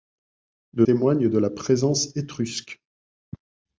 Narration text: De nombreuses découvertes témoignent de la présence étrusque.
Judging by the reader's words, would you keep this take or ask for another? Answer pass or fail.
fail